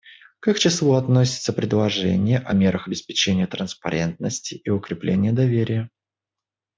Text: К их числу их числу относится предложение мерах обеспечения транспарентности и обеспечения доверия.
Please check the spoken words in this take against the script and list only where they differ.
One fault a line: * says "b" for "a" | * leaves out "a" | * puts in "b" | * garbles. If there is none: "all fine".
* leaves out "их числу"
* puts in "о"
* says "укрепления" for "обеспечения"